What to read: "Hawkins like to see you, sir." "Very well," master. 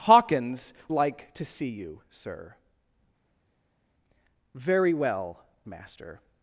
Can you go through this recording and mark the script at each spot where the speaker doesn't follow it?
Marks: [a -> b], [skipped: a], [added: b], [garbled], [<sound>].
"Hawkins like to see you, sir." "Very well," master.